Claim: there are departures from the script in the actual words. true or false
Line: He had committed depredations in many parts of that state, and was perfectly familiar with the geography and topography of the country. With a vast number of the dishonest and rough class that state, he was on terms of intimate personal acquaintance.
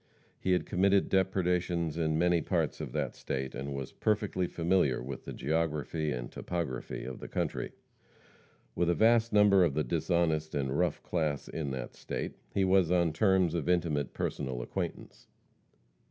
true